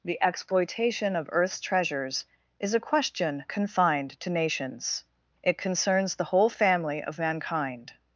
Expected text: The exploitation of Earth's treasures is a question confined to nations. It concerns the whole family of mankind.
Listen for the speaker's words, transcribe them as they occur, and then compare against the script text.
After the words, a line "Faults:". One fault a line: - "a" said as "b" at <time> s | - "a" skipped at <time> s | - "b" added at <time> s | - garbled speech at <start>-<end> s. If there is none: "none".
The exploitation of Earth's treasures is a question confined to nations. It concerns the whole family of mankind.
Faults:
none